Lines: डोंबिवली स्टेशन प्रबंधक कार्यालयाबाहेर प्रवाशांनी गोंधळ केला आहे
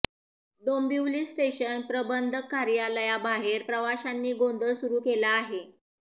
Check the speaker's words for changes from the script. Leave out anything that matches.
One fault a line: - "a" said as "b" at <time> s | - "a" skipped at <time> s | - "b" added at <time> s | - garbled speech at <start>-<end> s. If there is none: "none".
- "सुरू" added at 4.7 s